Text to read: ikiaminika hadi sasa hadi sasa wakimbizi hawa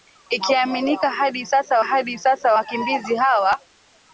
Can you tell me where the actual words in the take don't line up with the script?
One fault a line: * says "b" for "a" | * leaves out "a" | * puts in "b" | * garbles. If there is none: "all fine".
all fine